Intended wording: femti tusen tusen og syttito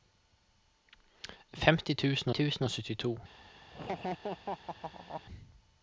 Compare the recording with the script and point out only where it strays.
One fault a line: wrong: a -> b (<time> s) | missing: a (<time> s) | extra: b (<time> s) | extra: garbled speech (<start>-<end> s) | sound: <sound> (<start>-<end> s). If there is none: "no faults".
sound: laugh (3.7-5.2 s)